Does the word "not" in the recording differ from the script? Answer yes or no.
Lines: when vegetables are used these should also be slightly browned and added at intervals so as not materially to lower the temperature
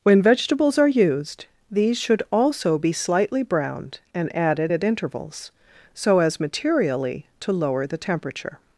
yes